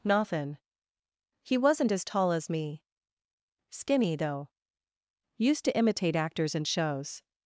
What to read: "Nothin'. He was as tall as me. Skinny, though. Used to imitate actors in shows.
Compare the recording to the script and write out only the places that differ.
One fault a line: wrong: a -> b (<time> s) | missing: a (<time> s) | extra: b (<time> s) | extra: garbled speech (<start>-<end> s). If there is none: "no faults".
wrong: was -> wasn't (1.6 s)